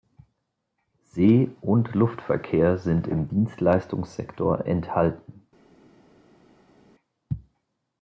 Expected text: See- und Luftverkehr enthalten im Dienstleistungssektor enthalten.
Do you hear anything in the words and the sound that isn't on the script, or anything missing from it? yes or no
yes